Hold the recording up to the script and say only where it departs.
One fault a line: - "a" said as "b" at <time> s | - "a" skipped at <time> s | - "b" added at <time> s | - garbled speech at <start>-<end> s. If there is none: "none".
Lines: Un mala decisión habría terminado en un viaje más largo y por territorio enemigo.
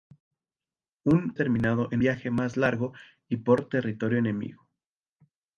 - "mala decisión habría" skipped at 1.4 s
- "un" skipped at 2.0 s